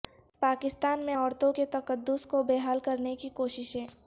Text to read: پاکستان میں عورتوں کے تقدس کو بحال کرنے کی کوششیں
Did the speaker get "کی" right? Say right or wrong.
right